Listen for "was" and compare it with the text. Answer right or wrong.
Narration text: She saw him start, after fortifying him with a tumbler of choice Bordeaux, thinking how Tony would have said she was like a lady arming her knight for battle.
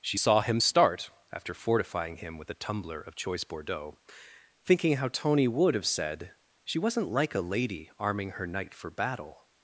wrong